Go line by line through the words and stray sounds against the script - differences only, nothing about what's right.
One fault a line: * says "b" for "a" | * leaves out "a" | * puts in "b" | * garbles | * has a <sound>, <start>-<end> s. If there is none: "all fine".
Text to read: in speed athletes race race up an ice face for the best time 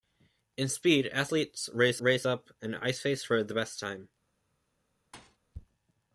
* has a thud, 5.1-5.4 s